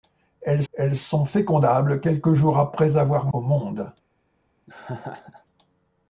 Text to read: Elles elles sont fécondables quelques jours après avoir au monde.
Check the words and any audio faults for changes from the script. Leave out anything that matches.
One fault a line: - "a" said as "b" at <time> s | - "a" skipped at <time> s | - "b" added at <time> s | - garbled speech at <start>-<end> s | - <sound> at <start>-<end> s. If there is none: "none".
- laugh at 4.7-5.5 s